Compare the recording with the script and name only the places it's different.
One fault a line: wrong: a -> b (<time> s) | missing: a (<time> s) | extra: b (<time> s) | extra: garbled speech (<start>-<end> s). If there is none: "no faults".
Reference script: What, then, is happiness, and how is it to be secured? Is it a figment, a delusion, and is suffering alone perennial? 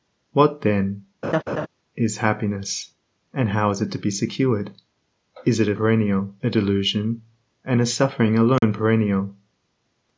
wrong: figment -> perennial (5.7 s)